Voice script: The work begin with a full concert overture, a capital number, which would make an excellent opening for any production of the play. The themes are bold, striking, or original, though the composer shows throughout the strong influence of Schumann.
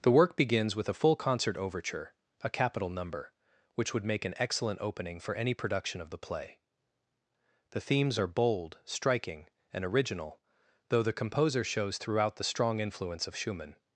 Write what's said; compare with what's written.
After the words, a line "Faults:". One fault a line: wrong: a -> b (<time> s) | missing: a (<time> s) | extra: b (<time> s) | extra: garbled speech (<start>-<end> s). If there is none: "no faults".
The work begins with a full concert overture, a capital number, which would make an excellent opening for any production of the play. The themes are bold, striking, and original, though the composer shows throughout the strong influence of Schumann.
Faults:
wrong: begin -> begins (0.3 s)
wrong: or -> and (9.7 s)